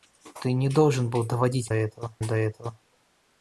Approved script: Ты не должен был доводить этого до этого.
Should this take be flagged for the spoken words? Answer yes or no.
no